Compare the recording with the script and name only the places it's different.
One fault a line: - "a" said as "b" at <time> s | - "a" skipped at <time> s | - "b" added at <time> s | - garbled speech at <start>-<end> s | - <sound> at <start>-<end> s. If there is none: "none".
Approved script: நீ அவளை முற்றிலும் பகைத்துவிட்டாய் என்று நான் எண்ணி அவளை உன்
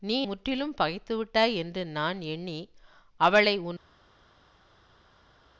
- "அவளை" skipped at 0.3 s